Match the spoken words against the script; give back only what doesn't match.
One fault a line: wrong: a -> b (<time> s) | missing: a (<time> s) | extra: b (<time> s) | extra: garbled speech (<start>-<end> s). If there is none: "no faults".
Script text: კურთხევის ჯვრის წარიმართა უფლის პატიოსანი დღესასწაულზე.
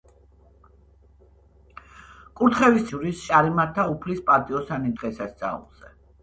no faults